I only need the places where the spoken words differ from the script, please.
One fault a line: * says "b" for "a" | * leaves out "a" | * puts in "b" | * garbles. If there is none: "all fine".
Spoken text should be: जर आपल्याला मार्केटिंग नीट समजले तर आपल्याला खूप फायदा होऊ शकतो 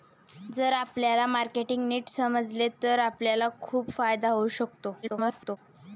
* garbles